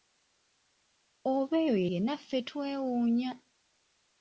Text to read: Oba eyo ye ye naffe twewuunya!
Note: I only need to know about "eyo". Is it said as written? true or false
true